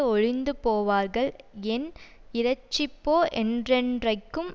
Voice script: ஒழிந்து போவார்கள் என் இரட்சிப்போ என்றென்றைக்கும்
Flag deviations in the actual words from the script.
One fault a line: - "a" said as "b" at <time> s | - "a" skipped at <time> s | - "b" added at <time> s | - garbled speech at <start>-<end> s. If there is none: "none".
none